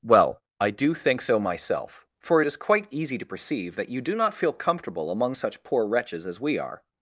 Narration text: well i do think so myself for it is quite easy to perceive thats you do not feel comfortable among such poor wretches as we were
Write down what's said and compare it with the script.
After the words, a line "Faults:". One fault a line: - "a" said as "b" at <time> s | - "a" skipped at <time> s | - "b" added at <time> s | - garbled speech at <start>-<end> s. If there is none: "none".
well i do think so myself for it is quite easy to perceive that you do not feel comfortable among such poor wretches as we are
Faults:
- "thats" said as "that" at 3.7 s
- "were" said as "are" at 6.6 s